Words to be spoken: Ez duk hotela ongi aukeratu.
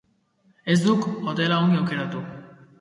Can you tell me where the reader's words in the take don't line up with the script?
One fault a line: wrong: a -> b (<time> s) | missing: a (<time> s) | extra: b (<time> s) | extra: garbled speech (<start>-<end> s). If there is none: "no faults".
no faults